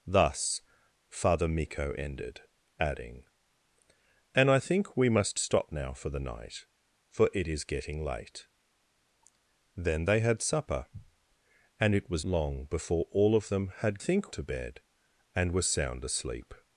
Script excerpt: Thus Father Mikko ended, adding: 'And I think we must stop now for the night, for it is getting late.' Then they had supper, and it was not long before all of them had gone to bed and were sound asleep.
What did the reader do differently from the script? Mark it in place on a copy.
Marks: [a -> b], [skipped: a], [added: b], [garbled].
Thus Father Mikko ended, adding: 'And I think we must stop now for the night, for it is getting late.' Then they had supper, and it was [skipped: not] long before all of them had [gone -> think] to bed and were sound asleep.